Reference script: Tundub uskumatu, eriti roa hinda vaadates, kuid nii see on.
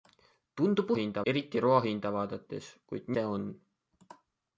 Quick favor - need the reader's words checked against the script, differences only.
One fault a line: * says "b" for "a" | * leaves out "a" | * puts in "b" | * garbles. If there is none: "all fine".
* says "hinda" for "uskumatu"
* leaves out "nii"